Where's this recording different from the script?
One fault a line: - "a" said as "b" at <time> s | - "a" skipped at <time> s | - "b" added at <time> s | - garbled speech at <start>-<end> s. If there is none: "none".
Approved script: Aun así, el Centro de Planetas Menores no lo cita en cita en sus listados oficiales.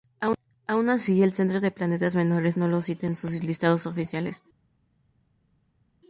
- "cita en" skipped at 3.2 s